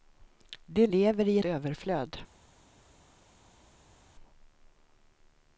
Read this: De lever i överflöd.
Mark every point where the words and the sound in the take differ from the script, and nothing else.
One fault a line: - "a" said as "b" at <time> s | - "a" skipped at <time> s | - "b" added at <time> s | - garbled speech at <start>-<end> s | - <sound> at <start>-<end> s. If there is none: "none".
none